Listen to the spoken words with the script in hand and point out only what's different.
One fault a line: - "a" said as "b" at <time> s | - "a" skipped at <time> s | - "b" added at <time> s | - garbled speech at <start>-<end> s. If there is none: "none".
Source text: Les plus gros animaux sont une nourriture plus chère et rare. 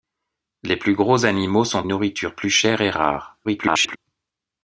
- "une" skipped at 1.8 s
- garbled speech at 3.4-4.0 s